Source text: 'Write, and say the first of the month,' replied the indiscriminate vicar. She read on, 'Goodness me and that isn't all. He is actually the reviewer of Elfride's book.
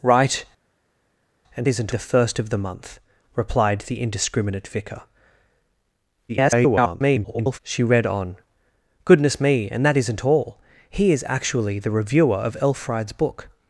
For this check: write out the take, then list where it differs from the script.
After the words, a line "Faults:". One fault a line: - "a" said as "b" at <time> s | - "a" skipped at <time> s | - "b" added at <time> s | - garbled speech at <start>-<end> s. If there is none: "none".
'Write, and isn't the first of the month,' replied the indiscriminate vicar. [garbled] She read on, 'Goodness me and that isn't all. He is actually the reviewer of Elfride's book.
Faults:
- "say" said as "isn't" at 1.7 s
- garbled speech at 6.3-7.6 s